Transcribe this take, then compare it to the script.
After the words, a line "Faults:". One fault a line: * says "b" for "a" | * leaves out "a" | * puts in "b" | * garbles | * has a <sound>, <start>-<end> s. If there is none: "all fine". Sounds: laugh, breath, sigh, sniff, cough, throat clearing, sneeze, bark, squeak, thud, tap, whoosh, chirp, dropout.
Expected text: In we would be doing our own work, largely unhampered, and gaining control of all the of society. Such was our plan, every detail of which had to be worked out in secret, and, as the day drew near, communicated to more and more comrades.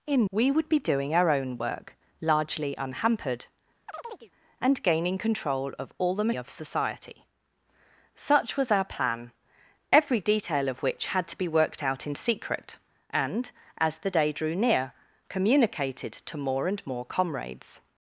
In we would be doing our own work, largely unhampered, and gaining control of all the of society. Such was our plan, every detail of which had to be worked out in secret, and, as the day drew near, communicated to more and more comrades.
Faults:
* has a chirp, 3.9-4.3 s